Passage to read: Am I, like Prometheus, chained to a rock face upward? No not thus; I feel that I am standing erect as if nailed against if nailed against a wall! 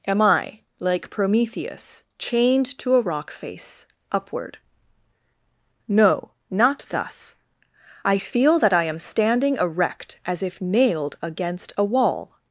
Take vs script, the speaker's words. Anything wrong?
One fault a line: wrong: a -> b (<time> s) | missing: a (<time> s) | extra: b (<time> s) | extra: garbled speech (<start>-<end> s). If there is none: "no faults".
missing: if nailed against (11.7 s)